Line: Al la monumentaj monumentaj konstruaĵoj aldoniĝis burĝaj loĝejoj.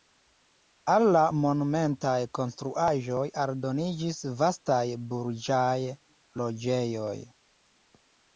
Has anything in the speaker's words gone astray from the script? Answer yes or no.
yes